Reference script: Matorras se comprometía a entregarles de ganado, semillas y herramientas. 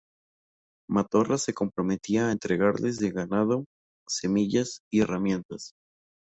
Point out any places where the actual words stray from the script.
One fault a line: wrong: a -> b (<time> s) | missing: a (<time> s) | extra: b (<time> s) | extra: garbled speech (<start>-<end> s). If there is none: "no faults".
no faults